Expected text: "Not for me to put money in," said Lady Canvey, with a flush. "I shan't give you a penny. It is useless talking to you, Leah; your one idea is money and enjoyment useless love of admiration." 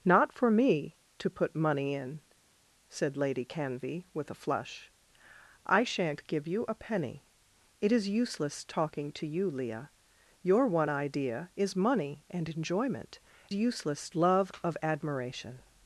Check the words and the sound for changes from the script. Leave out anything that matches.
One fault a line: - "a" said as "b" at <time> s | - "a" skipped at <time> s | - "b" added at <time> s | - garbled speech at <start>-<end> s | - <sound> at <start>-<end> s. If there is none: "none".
none